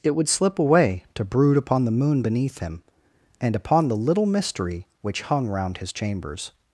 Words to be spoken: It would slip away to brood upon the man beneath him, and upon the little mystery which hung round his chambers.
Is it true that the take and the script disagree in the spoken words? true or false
true